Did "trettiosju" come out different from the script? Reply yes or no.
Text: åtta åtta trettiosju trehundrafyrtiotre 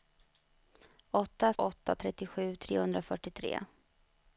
no